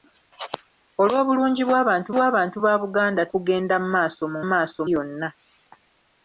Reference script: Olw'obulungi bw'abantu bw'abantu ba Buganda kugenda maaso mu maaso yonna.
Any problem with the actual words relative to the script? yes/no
no